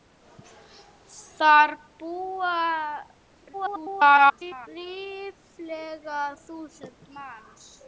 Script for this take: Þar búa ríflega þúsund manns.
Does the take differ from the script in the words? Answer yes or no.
yes